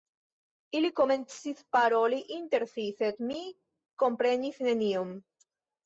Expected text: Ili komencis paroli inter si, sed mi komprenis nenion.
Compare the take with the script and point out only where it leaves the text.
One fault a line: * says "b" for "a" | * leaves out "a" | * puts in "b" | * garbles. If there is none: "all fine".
all fine